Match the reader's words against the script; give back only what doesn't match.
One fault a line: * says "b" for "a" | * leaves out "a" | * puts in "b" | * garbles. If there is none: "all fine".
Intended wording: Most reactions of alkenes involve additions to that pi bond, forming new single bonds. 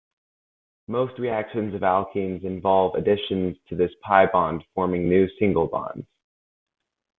* says "this" for "that"